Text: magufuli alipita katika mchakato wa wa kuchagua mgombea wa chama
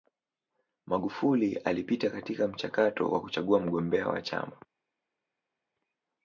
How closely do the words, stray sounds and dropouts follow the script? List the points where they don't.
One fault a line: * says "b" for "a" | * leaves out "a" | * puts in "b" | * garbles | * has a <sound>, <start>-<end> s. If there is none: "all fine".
* leaves out "wa"